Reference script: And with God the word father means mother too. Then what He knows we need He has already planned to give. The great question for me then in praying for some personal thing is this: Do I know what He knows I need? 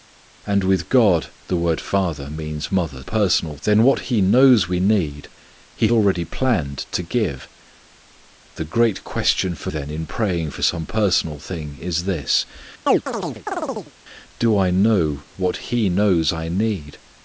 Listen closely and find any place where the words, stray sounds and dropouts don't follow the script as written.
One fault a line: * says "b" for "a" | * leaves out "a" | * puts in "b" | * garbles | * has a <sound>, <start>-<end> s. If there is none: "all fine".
* says "personal" for "too"
* leaves out "has"
* leaves out "me"
* has a chirp, 12.9-13.9 s